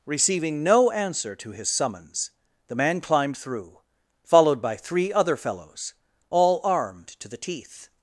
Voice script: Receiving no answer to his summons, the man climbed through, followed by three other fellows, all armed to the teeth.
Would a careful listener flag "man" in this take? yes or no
no